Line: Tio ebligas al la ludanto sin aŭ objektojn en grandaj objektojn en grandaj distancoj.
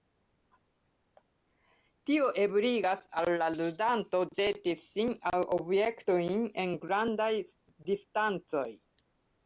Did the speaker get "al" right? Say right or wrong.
right